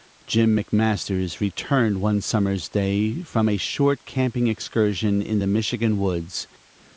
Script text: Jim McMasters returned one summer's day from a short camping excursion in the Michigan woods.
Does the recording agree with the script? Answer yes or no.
yes